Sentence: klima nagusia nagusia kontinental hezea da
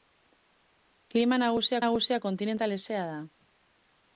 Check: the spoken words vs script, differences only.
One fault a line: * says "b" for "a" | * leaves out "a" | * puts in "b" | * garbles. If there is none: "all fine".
all fine